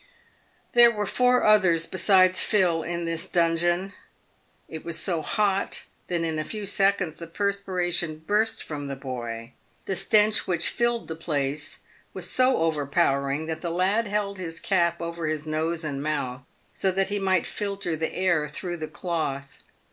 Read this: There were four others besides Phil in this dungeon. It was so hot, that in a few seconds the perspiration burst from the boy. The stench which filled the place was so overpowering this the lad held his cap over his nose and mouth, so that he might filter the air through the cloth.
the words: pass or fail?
fail